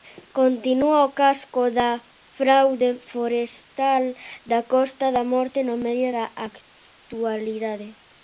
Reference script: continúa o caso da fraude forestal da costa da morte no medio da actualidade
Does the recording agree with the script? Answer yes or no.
yes